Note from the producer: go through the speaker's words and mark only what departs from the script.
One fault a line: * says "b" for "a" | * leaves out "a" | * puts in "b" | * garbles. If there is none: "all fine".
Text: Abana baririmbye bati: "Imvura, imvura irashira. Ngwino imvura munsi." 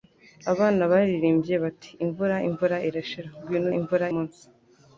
all fine